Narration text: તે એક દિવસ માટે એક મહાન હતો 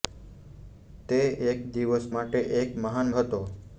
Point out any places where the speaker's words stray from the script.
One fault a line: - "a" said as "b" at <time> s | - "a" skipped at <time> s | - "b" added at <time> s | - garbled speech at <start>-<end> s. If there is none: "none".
none